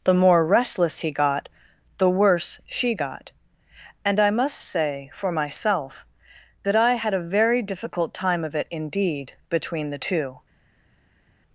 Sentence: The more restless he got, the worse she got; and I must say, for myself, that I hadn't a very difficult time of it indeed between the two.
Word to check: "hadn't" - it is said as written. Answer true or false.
false